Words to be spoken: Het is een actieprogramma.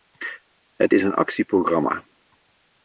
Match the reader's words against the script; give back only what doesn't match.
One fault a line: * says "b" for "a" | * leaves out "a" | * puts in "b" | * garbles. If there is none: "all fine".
all fine